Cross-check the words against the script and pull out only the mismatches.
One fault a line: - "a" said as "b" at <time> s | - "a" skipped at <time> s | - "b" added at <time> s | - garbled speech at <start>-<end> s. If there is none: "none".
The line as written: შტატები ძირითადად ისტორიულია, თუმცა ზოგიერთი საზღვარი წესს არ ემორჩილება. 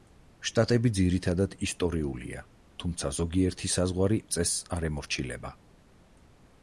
none